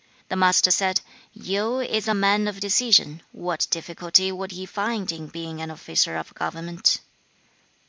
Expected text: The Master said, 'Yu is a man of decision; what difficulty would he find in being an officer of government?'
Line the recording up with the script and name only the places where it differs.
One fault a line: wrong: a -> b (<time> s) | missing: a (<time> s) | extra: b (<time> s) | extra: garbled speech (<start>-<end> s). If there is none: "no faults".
no faults